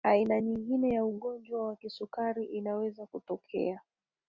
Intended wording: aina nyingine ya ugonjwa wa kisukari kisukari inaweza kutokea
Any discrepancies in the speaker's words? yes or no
yes